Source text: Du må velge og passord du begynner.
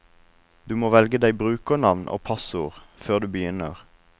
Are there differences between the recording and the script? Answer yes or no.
yes